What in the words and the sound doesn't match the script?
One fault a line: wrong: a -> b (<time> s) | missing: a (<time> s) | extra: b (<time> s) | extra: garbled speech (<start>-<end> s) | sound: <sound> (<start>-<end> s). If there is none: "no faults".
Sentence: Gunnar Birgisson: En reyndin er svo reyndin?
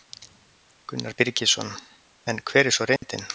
wrong: reyndin -> hver (2.5 s)
sound: dropout (3.0-3.0 s)